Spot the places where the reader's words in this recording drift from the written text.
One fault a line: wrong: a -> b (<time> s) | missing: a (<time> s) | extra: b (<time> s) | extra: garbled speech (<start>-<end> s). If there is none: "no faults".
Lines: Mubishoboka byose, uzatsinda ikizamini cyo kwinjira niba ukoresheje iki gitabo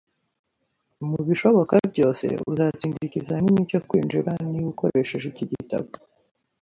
no faults